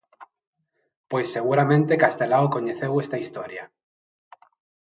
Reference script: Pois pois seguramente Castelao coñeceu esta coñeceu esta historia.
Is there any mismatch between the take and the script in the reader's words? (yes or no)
yes